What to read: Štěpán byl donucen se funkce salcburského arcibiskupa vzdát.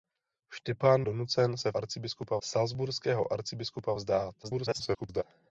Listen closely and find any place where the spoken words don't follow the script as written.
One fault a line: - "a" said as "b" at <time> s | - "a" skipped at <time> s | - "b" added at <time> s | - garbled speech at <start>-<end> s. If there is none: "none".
- "byl" skipped at 1.1 s
- "funkce" said as "arcibiskupa" at 1.8 s
- garbled speech at 4.4-5.2 s